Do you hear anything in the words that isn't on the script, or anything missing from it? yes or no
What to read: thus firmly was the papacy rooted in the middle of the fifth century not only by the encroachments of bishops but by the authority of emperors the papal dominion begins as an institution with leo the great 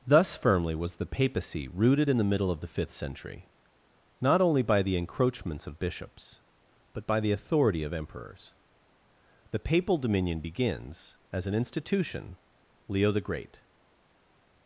yes